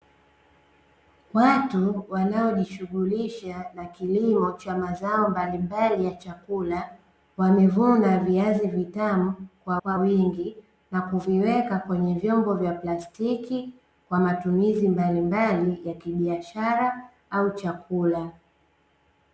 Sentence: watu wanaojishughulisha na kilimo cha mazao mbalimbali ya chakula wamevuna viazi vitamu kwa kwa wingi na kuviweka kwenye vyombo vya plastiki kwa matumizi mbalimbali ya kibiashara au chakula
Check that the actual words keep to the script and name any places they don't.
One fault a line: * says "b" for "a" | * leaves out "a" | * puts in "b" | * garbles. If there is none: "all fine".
all fine